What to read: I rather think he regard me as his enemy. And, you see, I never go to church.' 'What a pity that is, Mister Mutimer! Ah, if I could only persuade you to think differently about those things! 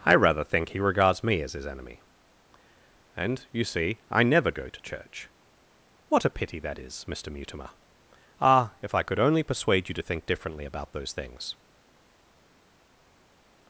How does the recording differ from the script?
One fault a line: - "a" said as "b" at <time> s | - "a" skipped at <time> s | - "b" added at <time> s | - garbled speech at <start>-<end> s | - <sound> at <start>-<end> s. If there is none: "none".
- "regard" said as "regards" at 0.8 s